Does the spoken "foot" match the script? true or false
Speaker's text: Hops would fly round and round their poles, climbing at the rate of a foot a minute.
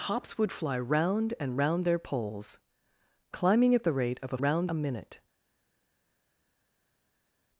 false